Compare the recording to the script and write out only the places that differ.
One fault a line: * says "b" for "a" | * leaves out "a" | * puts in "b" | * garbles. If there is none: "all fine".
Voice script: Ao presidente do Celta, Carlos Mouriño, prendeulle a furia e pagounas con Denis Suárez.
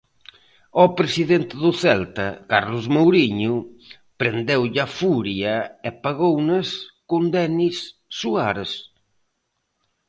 all fine